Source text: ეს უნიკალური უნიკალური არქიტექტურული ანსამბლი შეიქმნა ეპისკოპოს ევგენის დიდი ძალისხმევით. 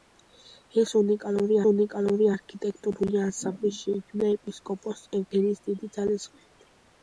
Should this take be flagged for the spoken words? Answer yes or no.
no